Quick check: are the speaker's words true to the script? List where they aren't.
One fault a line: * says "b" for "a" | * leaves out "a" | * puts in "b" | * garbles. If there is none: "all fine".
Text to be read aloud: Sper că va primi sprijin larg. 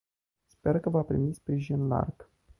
all fine